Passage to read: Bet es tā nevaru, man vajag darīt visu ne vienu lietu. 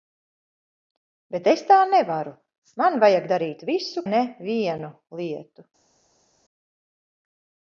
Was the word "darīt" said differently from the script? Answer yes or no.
no